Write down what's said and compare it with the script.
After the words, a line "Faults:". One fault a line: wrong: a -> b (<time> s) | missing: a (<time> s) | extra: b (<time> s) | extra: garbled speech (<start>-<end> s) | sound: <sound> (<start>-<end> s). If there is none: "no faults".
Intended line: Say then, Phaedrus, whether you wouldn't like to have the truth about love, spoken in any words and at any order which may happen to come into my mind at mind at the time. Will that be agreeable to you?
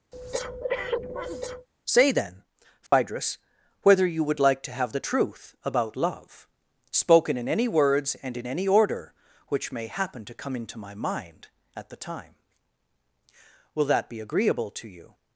Say then, Phaedrus, whether you would like to have the truth about love, spoken in any words and in any order which may happen to come into my mind at the time. Will that be agreeable to you?
Faults:
sound: breath (0.1-1.7 s)
sound: dropout (2.9-2.9 s)
wrong: wouldn't -> would (4.2 s)
wrong: at -> in (8.4 s)
missing: mind at (11.9 s)